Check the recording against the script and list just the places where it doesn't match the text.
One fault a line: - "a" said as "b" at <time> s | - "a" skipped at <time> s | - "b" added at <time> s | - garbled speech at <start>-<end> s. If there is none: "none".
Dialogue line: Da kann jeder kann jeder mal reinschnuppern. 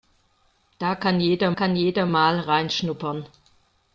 none